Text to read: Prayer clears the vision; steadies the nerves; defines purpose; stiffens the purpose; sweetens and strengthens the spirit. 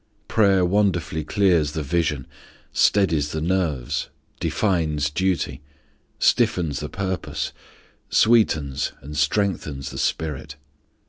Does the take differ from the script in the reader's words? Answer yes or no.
yes